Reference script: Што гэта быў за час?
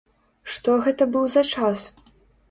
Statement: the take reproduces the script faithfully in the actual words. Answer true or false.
true